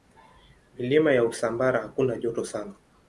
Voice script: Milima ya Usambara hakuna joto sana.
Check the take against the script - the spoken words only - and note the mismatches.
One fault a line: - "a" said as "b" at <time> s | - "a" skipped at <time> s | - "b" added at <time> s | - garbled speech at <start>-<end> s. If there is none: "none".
none